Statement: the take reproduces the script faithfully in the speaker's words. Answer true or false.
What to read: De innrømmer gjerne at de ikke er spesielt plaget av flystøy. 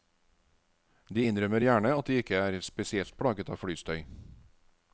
true